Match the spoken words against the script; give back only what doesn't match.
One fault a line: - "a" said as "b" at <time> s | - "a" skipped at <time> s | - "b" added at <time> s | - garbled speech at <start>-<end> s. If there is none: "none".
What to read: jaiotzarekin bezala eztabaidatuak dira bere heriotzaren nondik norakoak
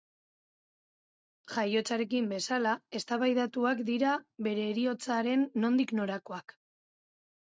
none